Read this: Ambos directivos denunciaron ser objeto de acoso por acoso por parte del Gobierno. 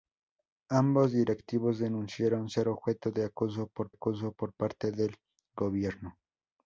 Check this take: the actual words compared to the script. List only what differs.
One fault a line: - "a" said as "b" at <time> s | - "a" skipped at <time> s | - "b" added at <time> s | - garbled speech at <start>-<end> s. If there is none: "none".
none